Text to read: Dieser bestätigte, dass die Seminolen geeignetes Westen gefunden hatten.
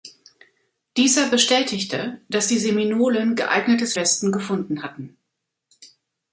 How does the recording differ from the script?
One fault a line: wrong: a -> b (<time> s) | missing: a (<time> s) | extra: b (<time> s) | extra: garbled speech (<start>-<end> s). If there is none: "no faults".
no faults